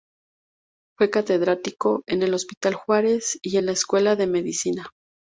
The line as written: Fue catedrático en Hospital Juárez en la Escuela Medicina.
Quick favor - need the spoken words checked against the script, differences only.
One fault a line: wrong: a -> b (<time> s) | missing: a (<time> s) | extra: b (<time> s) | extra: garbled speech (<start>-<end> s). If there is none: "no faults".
extra: el (2.2 s)
extra: y (3.4 s)
extra: de (4.2 s)